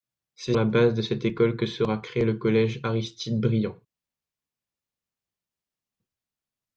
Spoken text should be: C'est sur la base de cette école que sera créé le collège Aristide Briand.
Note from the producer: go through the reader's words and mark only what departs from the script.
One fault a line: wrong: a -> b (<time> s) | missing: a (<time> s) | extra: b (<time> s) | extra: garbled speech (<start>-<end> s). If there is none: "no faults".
missing: sur (0.6 s)